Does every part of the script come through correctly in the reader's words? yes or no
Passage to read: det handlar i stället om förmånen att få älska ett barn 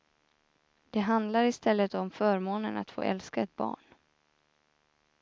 yes